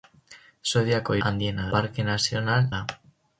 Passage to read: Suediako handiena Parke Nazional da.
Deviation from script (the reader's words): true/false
false